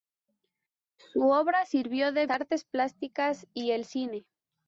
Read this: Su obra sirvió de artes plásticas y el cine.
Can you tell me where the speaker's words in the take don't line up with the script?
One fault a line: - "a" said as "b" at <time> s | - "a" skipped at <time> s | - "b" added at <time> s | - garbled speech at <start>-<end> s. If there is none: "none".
none